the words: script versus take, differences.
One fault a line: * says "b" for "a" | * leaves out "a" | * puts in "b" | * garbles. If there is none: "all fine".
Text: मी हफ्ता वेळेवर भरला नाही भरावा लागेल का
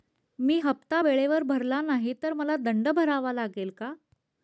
* puts in "तर मला दंड"